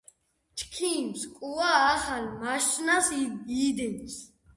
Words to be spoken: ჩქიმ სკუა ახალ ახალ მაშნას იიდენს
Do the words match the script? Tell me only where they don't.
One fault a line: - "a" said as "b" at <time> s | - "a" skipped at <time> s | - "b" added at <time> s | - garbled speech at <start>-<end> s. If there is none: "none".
- "ახალ" skipped at 2.2 s